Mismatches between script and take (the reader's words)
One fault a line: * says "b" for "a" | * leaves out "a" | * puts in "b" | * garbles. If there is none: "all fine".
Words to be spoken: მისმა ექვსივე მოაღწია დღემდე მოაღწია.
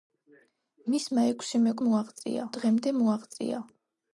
all fine